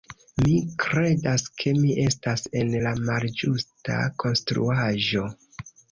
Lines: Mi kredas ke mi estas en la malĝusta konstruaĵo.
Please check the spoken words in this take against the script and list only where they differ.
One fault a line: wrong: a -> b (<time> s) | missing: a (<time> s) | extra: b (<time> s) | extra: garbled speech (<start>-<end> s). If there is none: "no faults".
no faults